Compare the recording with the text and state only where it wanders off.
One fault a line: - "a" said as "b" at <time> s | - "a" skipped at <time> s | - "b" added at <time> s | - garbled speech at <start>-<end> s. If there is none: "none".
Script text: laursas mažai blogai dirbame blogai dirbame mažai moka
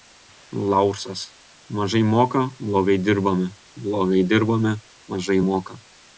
- "moka" added at 2.1 s